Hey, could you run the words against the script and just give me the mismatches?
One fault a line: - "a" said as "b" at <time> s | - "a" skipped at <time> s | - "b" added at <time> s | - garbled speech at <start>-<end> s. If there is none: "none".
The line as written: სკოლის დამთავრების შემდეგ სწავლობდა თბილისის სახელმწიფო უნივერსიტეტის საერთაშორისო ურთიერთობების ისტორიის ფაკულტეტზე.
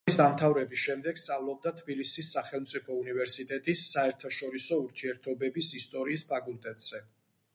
none